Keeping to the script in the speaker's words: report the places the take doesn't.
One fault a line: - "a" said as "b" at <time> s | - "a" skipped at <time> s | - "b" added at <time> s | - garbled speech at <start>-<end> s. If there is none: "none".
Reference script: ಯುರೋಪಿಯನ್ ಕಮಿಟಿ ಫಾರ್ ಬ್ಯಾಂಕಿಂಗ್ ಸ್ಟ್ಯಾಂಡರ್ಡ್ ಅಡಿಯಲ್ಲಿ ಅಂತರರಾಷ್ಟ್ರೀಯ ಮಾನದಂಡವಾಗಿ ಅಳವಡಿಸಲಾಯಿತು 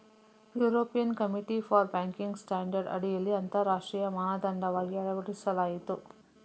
none